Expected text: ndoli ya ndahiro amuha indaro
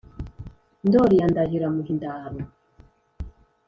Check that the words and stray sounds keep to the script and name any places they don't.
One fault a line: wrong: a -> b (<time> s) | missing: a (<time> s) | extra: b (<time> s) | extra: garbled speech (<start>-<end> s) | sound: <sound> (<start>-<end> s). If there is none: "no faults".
no faults